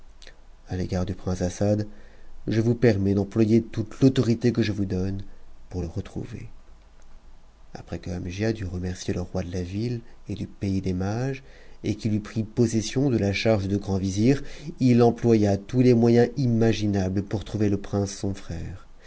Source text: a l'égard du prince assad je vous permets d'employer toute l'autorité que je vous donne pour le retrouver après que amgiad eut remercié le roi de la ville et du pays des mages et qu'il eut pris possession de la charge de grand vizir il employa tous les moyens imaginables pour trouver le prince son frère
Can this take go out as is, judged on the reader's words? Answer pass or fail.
pass